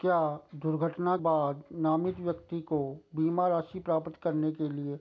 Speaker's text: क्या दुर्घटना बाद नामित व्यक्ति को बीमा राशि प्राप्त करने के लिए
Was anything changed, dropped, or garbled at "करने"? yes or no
no